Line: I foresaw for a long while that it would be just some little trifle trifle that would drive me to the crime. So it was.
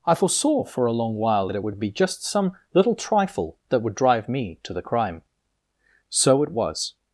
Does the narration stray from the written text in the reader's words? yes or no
yes